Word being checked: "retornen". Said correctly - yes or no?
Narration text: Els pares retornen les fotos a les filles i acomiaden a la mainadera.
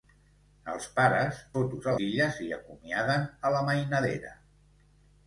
no